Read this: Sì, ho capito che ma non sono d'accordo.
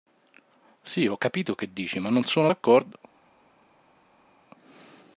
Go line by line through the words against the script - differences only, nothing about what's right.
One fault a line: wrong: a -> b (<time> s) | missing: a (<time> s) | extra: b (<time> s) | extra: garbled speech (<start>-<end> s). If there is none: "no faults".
extra: dici (1.7 s)